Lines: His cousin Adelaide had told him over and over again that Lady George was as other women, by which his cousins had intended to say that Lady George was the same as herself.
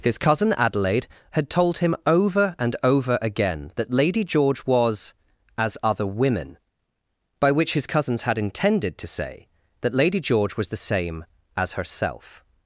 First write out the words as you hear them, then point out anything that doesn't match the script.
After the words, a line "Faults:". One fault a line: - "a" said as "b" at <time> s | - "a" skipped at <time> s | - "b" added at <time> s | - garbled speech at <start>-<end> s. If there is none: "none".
His cousin Adelaide had told him over and over again that Lady George was as other women, by which his cousins had intended to say that Lady George was the same as herself.
Faults:
none